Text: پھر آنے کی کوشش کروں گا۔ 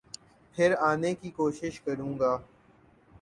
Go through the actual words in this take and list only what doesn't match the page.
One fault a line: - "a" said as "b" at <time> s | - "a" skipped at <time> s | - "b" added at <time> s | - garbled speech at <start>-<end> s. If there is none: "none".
none